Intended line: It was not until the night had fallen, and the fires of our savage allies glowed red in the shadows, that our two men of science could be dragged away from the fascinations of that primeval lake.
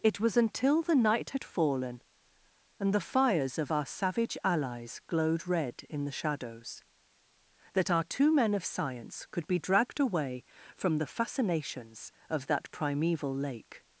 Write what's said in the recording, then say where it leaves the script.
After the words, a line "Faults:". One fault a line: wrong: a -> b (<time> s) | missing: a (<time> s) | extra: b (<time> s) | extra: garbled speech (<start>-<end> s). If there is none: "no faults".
It was until the night had fallen, and the fires of our savage allies glowed red in the shadows, that our two men of science could be dragged away from the fascinations of that primeval lake.
Faults:
missing: not (0.3 s)